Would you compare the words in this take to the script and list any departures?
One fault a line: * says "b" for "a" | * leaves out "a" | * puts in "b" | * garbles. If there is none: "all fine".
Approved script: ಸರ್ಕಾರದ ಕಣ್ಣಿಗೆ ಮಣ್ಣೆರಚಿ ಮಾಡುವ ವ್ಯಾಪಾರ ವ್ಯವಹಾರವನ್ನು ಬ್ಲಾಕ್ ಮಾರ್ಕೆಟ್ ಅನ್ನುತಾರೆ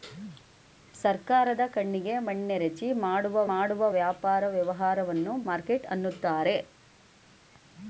* puts in "ಮಾಡುವ"
* leaves out "ಬ್ಲಾಕ್"